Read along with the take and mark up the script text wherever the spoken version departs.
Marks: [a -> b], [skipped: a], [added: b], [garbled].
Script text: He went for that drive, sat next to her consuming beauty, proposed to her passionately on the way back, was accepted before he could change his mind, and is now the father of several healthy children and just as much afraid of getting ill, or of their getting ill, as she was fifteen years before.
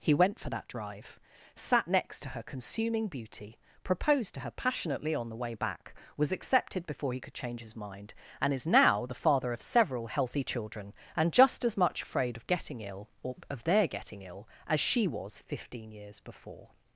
He went for that drive, sat next to her consuming beauty, proposed to her passionately on the way back, was accepted before he could change his mind, and is now the father of several healthy children and just as much afraid of getting ill, or of their getting ill, as she was fifteen years before.